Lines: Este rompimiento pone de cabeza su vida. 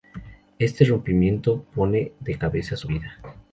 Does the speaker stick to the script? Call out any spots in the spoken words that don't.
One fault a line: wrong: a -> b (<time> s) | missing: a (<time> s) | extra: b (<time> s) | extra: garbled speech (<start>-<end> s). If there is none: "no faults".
no faults